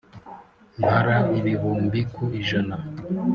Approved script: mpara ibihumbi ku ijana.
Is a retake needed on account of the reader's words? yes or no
no